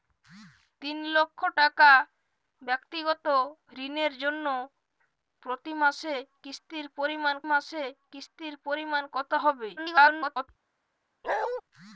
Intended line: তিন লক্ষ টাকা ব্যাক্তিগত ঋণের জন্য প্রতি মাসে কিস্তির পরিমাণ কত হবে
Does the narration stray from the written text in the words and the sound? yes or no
yes